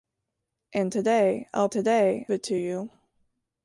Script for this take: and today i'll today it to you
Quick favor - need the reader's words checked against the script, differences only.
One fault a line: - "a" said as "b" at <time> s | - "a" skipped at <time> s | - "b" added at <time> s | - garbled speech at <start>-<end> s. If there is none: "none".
none